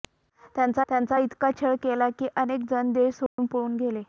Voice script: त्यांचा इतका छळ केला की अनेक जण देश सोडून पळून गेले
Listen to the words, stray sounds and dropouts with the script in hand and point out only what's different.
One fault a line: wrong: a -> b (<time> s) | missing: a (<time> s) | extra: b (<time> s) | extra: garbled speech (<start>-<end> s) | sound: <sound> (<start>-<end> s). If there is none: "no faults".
extra: त्यांचा (0.9 s)
sound: dropout (3.3-3.4 s)